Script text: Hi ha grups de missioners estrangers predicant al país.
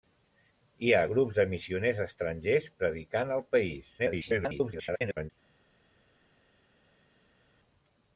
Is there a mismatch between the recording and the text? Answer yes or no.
yes